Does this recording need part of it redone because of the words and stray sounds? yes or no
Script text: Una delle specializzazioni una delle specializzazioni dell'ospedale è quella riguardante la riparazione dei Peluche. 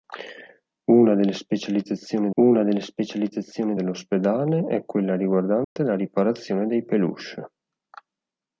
yes